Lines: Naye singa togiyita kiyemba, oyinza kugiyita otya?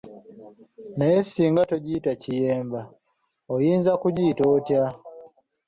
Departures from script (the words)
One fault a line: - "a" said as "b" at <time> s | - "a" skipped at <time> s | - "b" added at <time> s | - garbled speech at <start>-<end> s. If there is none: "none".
none